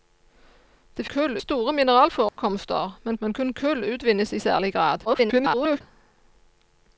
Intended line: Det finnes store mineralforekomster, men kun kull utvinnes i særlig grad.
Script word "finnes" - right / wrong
wrong